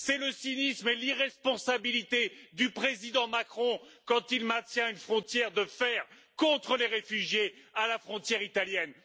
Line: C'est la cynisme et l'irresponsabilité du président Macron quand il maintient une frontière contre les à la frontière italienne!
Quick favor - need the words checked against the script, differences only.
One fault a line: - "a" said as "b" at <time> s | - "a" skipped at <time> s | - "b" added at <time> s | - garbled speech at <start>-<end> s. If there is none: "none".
- "la" said as "le" at 0.2 s
- "de fer" added at 5.5 s
- "réfugiés" added at 6.9 s